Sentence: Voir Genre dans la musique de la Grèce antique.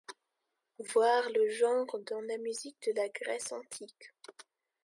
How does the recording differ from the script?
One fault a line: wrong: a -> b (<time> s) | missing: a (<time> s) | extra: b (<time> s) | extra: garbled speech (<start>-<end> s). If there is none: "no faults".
extra: Le (1.3 s)